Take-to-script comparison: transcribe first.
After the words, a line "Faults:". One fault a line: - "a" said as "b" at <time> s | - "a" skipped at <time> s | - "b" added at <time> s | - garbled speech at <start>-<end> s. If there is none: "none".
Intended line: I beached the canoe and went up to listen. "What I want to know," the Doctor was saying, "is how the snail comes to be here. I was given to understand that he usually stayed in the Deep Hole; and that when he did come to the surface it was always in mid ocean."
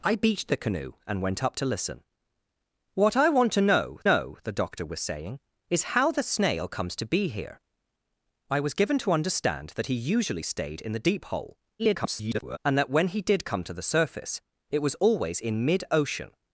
I beached the canoe and went up to listen. "What I want to know know," the Doctor was saying, "is how the snail comes to be here. I was given to understand that he usually stayed in the Deep Hole; [garbled] and that when he did come to the surface it was always in mid ocean."
Faults:
- "know" added at 4.0 s
- garbled speech at 11.8-12.6 s